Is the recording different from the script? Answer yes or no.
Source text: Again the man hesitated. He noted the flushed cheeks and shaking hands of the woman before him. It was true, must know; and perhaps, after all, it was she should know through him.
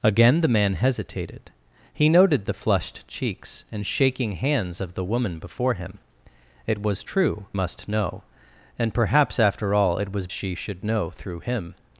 no